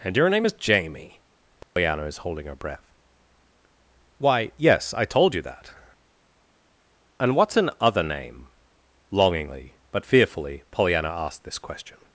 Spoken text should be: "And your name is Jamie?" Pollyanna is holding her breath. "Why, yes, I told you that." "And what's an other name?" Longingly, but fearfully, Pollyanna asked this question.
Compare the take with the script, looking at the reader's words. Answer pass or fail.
pass